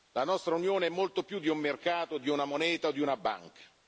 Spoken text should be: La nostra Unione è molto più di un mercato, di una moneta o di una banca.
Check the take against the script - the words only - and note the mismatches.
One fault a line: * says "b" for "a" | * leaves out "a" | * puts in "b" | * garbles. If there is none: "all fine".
all fine